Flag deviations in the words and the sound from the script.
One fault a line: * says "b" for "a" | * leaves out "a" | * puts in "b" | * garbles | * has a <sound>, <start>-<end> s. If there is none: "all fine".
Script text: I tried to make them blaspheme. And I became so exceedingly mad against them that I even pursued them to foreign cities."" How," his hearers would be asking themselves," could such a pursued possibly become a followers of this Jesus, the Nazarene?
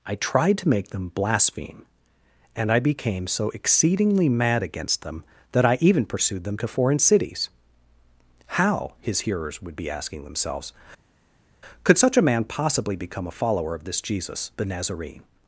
* says "man" for "pursued"
* says "follower" for "followers"